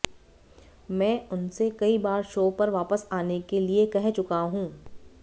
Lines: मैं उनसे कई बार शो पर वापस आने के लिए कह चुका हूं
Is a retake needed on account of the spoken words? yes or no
no